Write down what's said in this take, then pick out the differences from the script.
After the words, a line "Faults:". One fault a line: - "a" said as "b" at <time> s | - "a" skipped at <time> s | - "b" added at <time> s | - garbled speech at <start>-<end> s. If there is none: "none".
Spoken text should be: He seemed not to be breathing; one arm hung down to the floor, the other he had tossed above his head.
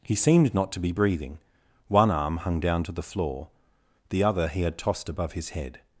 He seemed not to be breathing; one arm hung down to the floor, the other he had tossed above his head.
Faults:
none